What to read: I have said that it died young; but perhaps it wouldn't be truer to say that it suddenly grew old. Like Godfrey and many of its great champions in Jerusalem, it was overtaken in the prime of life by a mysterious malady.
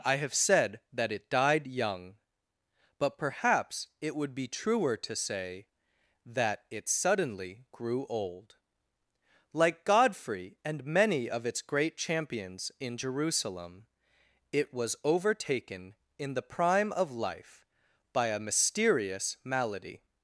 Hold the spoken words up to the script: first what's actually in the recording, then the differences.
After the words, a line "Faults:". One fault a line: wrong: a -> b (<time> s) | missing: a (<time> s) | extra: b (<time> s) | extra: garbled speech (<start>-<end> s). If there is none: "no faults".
I have said that it died young; but perhaps it would be truer to say that it suddenly grew old. Like Godfrey and many of its great champions in Jerusalem, it was overtaken in the prime of life by a mysterious malady.
Faults:
wrong: wouldn't -> would (4.2 s)